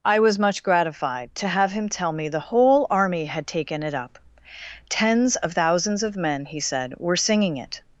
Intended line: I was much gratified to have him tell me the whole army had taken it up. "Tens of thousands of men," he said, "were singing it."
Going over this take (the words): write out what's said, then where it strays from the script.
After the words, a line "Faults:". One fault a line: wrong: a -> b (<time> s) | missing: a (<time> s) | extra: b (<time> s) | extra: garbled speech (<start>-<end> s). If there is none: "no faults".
I was much gratified to have him tell me the whole army had taken it up. "Tens of thousands of men," he said, "were singing it."
Faults:
no faults